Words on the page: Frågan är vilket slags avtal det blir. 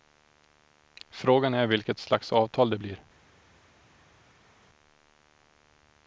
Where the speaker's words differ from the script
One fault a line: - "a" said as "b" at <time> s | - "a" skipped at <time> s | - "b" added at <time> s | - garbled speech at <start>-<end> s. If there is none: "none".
none